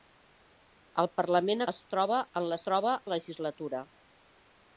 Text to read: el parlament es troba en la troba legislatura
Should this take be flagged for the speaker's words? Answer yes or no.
no